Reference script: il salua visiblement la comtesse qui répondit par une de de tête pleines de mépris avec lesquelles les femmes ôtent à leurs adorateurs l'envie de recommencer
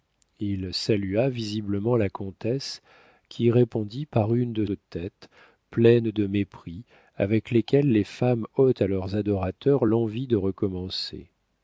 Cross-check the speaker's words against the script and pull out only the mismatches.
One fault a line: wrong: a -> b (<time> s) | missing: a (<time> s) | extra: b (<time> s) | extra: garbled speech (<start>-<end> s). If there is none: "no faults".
no faults